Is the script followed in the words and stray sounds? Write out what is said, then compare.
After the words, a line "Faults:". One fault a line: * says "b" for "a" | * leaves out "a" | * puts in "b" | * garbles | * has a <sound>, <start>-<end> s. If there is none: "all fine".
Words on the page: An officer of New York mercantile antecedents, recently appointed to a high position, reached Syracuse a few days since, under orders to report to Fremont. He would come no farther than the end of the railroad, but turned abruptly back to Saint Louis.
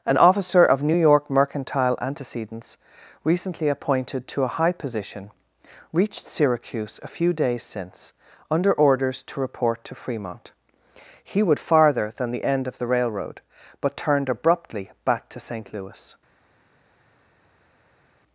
An officer of New York mercantile antecedents, recently appointed to a high position, reached Syracuse a few days since, under orders to report to Fremont. He would farther than the end of the railroad, but turned abruptly back to Saint Louis.
Faults:
* leaves out "come no"